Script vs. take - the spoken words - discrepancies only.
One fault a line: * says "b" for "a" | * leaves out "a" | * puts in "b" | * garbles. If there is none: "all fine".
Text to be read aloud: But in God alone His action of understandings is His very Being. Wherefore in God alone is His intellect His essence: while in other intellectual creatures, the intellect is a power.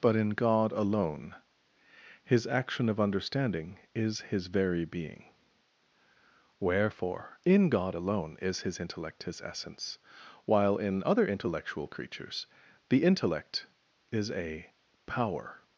* says "understanding" for "understandings"